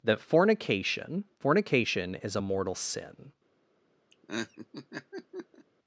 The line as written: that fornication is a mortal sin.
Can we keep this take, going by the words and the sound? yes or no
no